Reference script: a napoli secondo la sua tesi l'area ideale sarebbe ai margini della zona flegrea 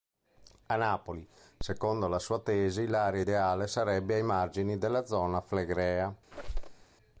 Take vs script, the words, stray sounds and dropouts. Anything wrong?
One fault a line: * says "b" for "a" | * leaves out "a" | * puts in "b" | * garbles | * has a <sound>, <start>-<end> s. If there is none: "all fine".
* has a squeak, 6.3-6.8 s